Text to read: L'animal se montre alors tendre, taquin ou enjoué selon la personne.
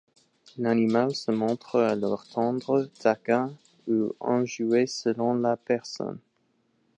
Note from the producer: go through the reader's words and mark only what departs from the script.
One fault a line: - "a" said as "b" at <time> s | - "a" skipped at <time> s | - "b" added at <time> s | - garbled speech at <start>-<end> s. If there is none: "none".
none